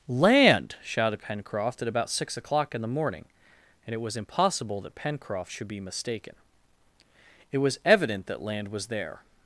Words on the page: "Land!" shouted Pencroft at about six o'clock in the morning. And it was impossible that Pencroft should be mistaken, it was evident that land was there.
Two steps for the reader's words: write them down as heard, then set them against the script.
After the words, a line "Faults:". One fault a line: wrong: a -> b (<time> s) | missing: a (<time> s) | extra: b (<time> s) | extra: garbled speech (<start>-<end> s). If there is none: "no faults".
"Land!" shouted Pencroft at about six o'clock in the morning. And it was impossible that Pencroft should be mistaken, it was evident that land was there.
Faults:
no faults